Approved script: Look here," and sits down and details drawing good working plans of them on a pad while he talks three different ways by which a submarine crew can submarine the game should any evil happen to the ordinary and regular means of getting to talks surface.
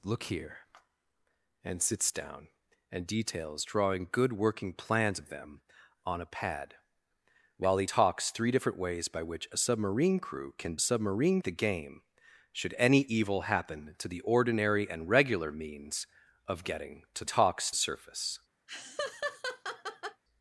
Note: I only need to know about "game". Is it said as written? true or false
true